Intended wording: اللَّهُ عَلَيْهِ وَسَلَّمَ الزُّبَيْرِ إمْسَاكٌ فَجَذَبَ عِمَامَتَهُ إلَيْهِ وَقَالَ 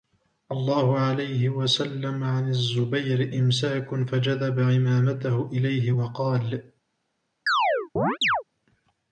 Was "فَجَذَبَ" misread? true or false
false